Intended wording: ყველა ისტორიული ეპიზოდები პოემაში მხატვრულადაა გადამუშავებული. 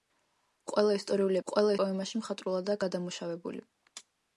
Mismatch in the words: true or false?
true